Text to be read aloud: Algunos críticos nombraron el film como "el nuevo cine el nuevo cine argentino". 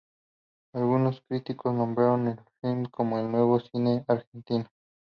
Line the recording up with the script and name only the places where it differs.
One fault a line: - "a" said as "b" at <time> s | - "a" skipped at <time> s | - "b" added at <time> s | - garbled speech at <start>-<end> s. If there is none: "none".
- "el nuevo cine" skipped at 4.0 s